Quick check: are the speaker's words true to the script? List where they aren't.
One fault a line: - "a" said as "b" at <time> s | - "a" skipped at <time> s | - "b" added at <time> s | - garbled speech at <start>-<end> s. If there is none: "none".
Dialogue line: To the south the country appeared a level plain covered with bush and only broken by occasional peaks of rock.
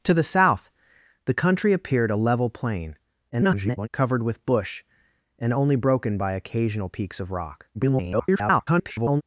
- garbled speech at 3.3-3.9 s
- garbled speech at 7.7-9.2 s